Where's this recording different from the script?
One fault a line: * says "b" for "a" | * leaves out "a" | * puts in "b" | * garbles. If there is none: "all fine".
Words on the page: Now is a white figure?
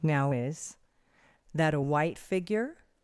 * puts in "that"